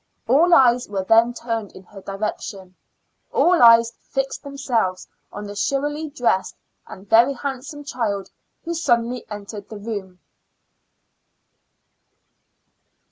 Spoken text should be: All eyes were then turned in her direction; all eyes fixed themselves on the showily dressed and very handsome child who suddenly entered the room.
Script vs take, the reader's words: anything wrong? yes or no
no